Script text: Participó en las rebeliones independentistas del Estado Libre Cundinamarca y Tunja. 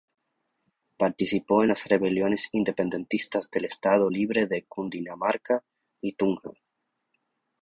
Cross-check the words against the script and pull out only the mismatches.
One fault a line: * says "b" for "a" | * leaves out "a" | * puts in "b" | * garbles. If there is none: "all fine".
* puts in "de"